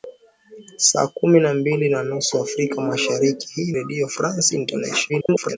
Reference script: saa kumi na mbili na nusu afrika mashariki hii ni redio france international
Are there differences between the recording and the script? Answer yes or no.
yes